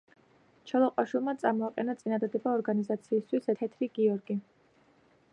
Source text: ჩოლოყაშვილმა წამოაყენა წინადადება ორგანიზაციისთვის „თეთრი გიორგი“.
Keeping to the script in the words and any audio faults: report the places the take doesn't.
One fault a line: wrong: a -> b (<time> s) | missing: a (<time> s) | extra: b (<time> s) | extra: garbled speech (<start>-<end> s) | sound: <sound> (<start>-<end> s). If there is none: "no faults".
no faults